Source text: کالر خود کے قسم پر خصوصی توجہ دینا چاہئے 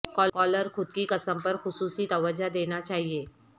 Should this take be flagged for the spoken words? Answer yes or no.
yes